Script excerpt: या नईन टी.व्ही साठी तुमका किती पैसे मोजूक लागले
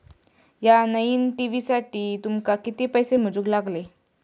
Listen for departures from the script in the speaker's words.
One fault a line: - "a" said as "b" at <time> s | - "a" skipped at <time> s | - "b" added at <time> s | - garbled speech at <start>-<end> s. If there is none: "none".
none